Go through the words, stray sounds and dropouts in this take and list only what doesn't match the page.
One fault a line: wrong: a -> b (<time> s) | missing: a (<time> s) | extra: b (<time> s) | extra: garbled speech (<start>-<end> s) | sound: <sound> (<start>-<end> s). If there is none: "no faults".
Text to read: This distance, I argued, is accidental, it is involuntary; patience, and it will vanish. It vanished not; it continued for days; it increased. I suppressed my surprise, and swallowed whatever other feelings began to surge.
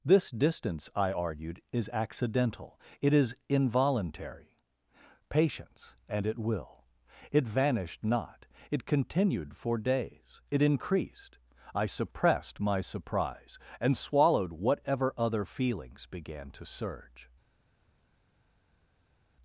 missing: vanish (6.9 s)